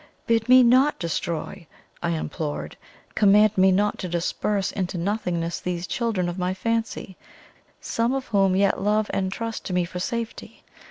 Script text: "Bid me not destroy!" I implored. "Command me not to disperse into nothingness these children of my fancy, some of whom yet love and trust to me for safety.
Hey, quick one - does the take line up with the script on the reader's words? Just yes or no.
yes